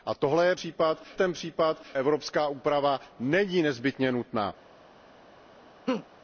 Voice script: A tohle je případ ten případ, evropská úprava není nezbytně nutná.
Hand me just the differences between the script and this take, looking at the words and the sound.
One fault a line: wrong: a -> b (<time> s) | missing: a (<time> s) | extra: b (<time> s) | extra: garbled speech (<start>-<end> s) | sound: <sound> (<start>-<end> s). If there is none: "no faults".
sound: laugh (5.9-6.1 s)